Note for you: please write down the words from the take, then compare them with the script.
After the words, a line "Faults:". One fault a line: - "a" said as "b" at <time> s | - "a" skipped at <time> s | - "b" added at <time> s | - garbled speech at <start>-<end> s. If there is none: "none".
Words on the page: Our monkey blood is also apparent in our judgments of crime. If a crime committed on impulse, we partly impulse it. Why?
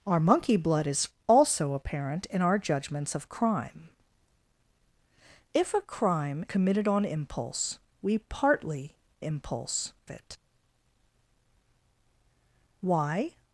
Our monkey blood is also apparent in our judgments of crime. If a crime committed on impulse, we partly impulse it. Why?
Faults:
none